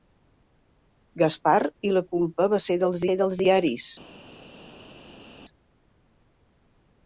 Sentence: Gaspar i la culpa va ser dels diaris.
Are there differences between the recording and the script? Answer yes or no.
yes